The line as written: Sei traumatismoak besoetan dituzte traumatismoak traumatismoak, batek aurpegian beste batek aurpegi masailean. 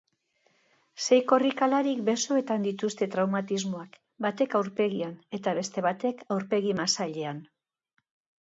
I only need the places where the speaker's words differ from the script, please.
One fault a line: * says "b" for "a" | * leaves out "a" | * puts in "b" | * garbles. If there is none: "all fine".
* says "korrikalarik" for "traumatismoak"
* leaves out "traumatismoak"
* puts in "eta"